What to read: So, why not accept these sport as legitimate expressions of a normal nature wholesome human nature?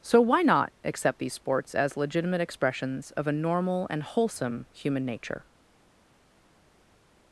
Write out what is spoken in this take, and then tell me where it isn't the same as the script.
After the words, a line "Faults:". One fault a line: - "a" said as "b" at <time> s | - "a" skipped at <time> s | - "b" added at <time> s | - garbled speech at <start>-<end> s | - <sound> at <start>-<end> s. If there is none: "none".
So, why not accept these sports as legitimate expressions of a normal and wholesome human nature?
Faults:
- "sport" said as "sports" at 1.3 s
- "nature" said as "and" at 3.9 s